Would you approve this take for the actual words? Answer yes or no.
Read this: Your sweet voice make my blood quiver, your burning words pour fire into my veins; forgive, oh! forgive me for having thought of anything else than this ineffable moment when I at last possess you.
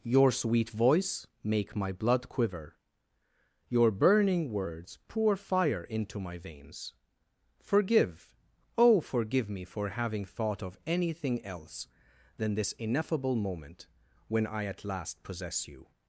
yes